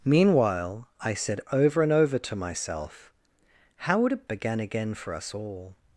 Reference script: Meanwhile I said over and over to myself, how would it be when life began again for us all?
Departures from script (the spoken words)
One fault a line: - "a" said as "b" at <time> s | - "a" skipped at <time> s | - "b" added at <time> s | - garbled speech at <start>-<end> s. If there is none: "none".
- "be when life" skipped at 4.2 s